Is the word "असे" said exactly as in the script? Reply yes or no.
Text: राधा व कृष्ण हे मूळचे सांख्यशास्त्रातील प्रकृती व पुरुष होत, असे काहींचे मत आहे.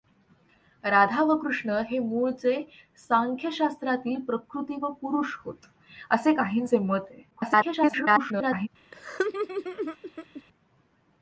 yes